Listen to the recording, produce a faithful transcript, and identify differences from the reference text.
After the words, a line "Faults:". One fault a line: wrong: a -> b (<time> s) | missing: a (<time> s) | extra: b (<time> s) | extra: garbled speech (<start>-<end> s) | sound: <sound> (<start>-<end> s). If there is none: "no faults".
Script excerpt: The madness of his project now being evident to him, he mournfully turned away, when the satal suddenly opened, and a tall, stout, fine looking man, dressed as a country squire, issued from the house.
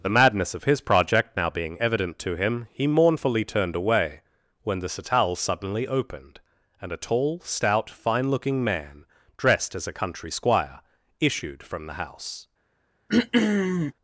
The madness of his project now being evident to him, he mournfully turned away, when the satal suddenly opened, and a tall, stout, fine looking man, dressed as a country squire, issued from the house.
Faults:
sound: throat clearing (13.1-13.9 s)